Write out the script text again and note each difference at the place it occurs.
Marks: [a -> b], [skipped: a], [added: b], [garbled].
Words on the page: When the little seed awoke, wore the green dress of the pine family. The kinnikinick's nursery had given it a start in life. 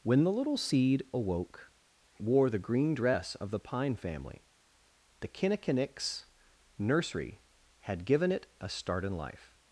When the little seed awoke, wore the green dress of the pine family. The kinnikinick's nursery had given it a start in life.